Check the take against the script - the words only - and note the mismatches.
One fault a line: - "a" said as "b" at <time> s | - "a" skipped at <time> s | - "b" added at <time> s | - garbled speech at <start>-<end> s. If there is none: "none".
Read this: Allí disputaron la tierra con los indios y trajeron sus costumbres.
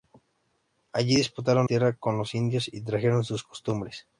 - "la" skipped at 1.7 s